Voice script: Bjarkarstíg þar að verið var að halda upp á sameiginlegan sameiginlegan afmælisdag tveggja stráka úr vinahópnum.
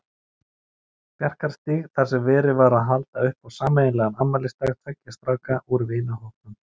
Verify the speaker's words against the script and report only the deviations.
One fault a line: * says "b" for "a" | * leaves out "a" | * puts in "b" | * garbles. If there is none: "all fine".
* says "sem" for "að"
* leaves out "sameiginlegan"